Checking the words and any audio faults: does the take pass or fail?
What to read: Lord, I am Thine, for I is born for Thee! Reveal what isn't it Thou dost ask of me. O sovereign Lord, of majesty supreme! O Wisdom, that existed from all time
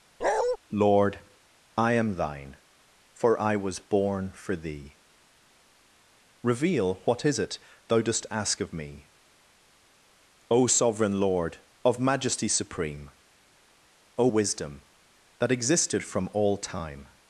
fail